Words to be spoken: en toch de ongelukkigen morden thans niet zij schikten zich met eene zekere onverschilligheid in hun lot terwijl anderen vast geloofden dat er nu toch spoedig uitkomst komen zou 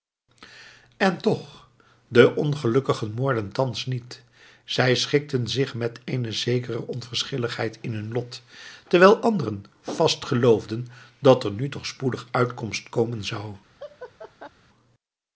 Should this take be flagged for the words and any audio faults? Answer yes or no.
yes